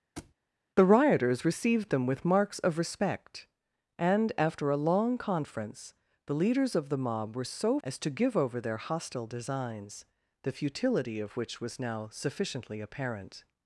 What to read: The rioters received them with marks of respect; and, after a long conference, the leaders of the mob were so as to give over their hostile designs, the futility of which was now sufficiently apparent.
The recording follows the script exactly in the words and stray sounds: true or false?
false